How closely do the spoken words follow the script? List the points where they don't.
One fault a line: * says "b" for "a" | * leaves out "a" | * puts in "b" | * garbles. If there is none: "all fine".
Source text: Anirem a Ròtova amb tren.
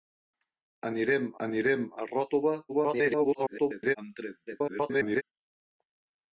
* puts in "anirem"
* garbles
* garbles